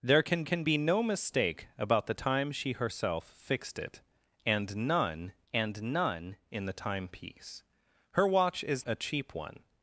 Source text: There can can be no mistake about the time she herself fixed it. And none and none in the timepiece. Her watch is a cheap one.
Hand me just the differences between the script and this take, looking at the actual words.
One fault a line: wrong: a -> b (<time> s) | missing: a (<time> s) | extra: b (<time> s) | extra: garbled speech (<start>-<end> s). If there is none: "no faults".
no faults